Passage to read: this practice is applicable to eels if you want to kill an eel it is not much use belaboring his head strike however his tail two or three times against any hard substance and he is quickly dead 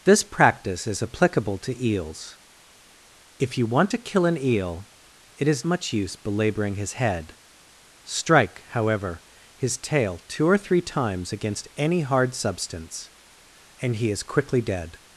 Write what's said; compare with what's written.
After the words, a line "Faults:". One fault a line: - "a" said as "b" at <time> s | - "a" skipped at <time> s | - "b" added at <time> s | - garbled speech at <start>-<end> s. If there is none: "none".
this practice is applicable to eels if you want to kill an eel it is much use belaboring his head strike however his tail two or three times against any hard substance and he is quickly dead
Faults:
- "not" skipped at 5.6 s